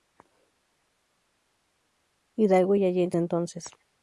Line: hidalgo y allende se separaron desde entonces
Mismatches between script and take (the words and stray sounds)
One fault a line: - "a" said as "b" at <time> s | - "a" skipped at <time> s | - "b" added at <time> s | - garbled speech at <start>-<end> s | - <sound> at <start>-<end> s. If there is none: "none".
- "se separaron desde" skipped at 3.2 s